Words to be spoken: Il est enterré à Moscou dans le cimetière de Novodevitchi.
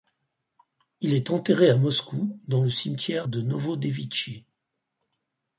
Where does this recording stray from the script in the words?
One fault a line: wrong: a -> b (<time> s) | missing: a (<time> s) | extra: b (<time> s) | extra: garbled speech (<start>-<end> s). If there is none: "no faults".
no faults